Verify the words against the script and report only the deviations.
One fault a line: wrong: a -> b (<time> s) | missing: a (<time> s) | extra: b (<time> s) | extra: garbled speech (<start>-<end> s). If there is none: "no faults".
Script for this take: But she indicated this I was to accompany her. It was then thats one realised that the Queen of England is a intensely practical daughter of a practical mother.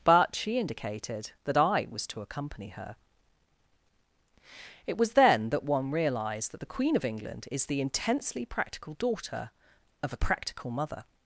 wrong: this -> that (1.4 s)
wrong: thats -> that (5.5 s)
wrong: a -> the (7.7 s)